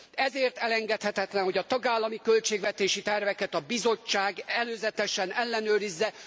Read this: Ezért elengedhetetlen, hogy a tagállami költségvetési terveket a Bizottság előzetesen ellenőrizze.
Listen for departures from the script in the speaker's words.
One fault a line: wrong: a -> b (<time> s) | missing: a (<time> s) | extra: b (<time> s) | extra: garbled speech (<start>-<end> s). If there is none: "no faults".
no faults